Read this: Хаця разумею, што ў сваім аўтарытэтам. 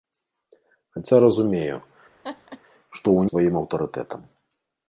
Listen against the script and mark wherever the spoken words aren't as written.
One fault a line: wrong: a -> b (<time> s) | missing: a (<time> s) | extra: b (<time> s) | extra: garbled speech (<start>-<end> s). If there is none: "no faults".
no faults